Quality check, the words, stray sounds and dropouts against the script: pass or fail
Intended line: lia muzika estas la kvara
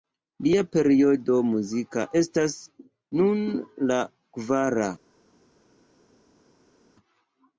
fail